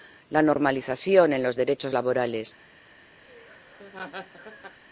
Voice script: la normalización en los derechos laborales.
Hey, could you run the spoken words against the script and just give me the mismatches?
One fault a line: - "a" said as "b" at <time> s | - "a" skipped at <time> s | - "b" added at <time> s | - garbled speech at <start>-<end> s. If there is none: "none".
none